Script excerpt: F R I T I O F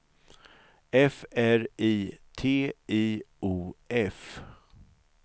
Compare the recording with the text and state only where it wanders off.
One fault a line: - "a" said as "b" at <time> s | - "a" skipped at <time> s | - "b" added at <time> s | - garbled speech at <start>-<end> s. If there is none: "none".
none